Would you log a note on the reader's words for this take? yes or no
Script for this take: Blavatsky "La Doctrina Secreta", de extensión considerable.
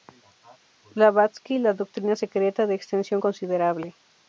no